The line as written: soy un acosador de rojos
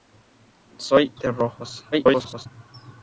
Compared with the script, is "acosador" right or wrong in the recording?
wrong